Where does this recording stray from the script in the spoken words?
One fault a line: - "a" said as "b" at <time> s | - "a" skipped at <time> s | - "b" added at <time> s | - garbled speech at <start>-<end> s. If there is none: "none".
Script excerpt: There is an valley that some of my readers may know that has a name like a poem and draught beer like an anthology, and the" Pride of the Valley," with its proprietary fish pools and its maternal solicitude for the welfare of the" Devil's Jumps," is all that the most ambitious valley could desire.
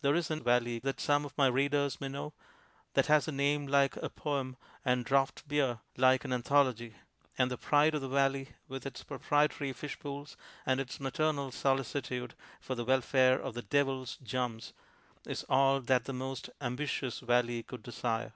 none